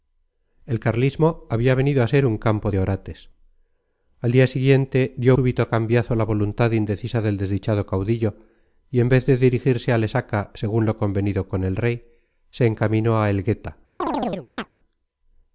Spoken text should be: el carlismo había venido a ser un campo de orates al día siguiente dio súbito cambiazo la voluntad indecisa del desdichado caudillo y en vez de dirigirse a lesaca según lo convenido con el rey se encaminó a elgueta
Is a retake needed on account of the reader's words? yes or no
no